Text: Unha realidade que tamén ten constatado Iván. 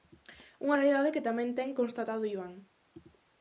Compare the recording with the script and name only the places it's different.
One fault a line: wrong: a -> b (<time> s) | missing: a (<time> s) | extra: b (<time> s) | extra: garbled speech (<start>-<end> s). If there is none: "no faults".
no faults